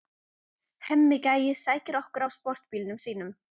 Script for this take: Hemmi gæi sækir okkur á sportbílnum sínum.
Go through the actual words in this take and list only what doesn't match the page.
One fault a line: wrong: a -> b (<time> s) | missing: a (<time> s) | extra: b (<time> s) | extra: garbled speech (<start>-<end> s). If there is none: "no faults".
no faults